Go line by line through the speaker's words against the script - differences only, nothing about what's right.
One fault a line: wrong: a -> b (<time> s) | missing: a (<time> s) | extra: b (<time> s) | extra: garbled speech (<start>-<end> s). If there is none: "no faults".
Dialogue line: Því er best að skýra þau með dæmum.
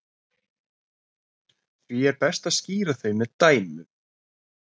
no faults